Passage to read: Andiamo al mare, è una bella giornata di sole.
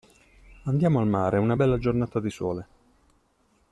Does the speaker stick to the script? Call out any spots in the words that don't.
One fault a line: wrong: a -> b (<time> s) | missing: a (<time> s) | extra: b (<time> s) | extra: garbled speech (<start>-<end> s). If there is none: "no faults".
no faults